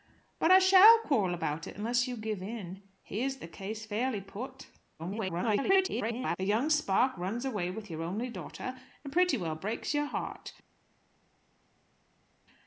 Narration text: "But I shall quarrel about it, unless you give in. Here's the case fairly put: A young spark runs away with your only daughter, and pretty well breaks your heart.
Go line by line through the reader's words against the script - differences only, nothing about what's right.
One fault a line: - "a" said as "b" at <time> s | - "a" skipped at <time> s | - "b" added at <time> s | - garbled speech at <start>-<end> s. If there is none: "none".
- garbled speech at 5.0-6.4 s